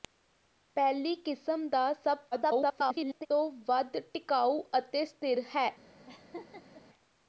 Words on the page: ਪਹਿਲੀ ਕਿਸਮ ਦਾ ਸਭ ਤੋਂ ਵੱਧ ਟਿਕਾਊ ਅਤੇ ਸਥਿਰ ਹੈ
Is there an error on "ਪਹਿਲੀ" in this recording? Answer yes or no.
no